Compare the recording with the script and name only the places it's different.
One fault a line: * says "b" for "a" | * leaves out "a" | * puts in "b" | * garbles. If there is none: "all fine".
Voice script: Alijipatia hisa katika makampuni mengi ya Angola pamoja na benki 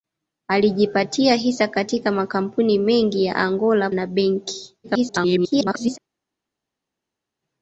* leaves out "pamoja"
* garbles